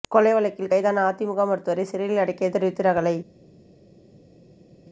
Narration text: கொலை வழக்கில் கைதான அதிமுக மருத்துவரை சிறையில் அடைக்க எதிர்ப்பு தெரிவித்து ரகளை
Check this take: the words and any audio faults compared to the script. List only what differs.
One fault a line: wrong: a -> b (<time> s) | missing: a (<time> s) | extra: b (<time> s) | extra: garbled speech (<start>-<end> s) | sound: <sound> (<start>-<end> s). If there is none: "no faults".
missing: எதிர்ப்பு (2.5 s)